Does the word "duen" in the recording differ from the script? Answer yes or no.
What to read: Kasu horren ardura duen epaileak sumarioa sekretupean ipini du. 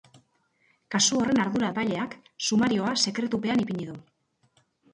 yes